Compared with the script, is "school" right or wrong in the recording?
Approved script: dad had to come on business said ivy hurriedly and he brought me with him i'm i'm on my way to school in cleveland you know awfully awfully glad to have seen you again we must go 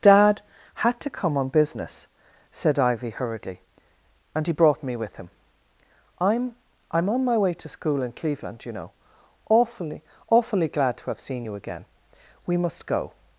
right